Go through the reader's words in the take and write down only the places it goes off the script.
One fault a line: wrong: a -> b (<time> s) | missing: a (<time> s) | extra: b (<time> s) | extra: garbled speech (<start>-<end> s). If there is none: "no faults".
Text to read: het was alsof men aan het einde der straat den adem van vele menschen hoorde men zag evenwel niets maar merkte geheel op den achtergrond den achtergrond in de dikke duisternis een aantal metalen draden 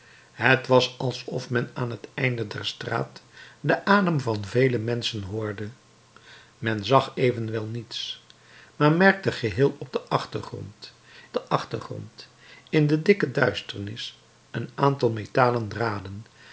no faults